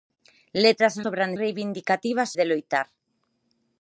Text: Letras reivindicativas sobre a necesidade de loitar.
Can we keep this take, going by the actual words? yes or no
no